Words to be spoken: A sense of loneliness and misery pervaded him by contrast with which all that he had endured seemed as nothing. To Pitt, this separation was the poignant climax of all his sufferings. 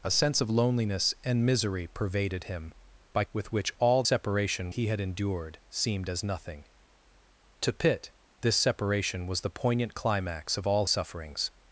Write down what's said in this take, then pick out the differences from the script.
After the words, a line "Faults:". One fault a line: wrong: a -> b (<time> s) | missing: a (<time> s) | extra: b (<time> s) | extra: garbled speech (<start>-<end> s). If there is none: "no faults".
A sense of loneliness and misery pervaded him by with which all separation he had endured seemed as nothing. To Pitt, this separation was the poignant climax of all sufferings.
Faults:
missing: contrast (3.2 s)
wrong: that -> separation (4.0 s)
missing: his (10.9 s)